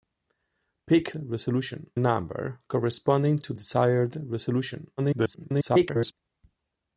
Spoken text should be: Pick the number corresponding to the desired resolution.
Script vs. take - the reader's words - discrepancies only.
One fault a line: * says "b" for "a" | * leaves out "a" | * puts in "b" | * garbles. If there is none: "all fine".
* says "resolution" for "the"
* leaves out "the"
* garbles